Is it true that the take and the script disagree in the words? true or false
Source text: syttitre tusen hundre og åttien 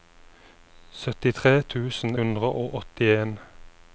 false